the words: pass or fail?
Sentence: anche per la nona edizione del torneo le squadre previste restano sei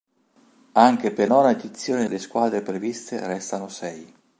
fail